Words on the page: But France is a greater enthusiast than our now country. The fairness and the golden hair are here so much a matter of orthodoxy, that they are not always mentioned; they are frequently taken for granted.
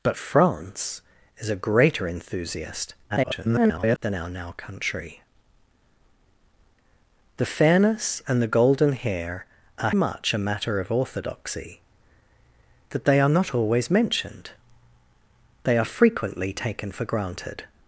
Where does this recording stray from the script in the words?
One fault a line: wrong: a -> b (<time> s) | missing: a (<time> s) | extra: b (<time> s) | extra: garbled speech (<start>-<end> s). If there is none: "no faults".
extra: garbled speech (3.1-4.0 s)
missing: here so (9.9 s)